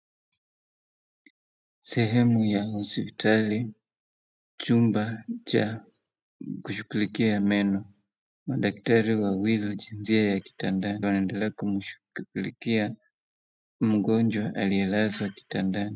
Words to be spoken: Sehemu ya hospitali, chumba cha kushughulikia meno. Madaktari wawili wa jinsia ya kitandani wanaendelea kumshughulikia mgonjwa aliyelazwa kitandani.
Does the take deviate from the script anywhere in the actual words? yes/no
no